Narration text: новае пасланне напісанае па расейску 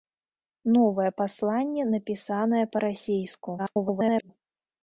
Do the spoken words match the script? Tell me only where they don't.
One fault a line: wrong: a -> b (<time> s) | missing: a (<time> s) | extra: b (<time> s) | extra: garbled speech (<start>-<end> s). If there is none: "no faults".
extra: garbled speech (3.6-4.3 s)